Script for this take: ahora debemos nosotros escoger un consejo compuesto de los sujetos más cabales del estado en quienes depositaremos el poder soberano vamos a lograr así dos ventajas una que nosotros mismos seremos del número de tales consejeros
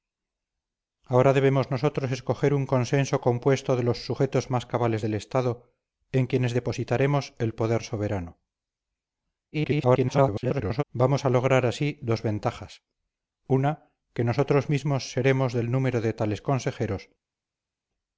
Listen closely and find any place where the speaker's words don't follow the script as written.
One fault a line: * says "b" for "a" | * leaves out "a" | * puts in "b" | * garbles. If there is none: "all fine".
* garbles